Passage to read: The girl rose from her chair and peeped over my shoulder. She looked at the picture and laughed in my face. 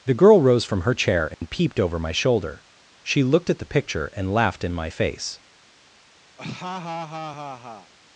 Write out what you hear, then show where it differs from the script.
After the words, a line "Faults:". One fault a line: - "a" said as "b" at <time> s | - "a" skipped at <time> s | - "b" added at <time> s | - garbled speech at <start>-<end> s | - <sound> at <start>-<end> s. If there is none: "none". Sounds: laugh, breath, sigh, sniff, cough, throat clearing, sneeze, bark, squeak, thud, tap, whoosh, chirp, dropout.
The girl rose from her chair and peeped over my shoulder. She looked at the picture and laughed in my face.
Faults:
- dropout at 1.3-1.4 s
- laugh at 6.4-7.9 s